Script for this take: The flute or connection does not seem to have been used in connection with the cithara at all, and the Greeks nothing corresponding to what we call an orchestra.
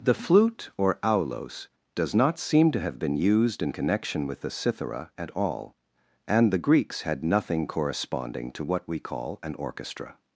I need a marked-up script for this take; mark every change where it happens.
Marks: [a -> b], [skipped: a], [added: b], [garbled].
The flute or [connection -> aulos] does not seem to have been used in connection with the cithara at all, and the Greeks [added: had] nothing corresponding to what we call an orchestra.